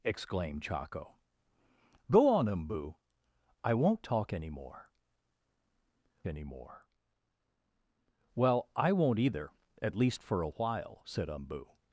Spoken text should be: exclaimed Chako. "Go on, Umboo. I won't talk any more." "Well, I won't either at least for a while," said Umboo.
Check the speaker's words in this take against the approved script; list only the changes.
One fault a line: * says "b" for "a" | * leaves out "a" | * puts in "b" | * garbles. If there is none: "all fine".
* puts in "any more"